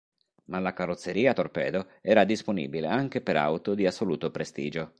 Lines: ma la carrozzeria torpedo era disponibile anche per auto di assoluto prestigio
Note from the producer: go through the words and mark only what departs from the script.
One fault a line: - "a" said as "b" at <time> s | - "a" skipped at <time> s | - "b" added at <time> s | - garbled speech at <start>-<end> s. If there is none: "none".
none